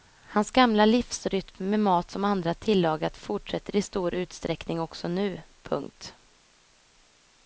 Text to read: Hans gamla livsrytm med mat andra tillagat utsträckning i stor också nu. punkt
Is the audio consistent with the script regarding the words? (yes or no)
no